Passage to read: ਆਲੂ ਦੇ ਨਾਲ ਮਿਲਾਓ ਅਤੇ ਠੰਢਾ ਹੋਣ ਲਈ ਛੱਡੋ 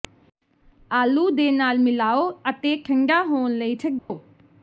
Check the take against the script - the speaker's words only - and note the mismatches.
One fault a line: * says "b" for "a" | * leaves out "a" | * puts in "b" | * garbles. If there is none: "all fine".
all fine